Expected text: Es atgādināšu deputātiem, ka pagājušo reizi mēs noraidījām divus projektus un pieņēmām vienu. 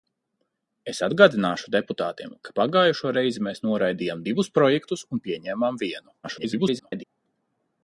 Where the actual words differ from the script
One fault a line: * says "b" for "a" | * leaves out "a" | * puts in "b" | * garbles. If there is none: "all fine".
* garbles